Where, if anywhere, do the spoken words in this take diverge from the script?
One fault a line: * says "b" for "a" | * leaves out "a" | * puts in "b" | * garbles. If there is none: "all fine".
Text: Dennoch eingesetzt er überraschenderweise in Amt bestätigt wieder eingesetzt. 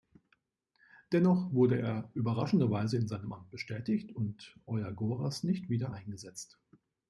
* says "wurde" for "eingesetzt"
* puts in "seinem"
* puts in "und Euagoras nicht"